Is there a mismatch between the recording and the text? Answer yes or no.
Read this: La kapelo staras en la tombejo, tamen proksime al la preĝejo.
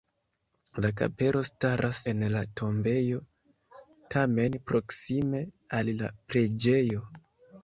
no